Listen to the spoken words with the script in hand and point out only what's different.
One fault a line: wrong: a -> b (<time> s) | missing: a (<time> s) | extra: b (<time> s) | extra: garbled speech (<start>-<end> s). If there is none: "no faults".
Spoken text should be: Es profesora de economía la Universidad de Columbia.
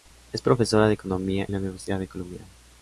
no faults